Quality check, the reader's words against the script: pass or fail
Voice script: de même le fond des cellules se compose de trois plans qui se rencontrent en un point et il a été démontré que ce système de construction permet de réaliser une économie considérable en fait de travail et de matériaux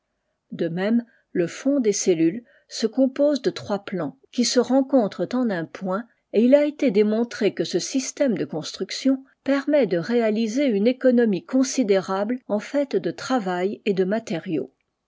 pass